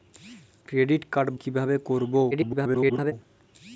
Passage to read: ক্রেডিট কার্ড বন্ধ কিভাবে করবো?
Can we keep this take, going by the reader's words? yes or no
no